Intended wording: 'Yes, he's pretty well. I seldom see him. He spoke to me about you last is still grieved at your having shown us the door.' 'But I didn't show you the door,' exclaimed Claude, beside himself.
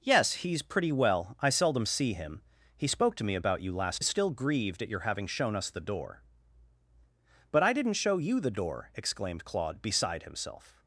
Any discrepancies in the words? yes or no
no